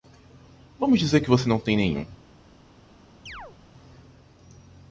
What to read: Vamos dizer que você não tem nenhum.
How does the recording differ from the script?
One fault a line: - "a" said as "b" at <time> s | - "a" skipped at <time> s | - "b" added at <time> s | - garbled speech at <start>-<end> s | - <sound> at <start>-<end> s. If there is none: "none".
- chirp at 3.3-3.6 s